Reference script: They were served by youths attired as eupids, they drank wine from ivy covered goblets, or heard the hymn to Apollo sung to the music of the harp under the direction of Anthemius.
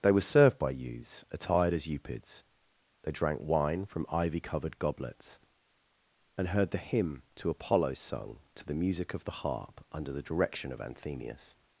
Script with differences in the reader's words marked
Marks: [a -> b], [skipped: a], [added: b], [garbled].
They were served by youths attired as eupids, they drank wine from ivy covered goblets, [or -> and] heard the hymn to Apollo sung to the music of the harp under the direction of Anthemius.